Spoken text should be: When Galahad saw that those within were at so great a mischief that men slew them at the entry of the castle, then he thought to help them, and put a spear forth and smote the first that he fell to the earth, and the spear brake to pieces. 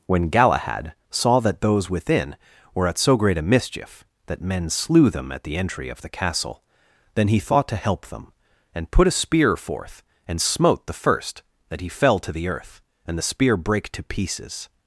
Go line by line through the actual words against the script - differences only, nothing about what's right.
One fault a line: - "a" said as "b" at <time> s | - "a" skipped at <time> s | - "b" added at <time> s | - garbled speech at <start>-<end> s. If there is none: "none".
none